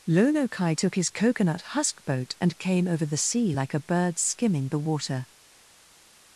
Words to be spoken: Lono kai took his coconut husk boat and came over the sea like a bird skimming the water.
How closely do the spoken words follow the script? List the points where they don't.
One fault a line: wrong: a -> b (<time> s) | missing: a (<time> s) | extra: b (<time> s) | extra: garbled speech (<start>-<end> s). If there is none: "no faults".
no faults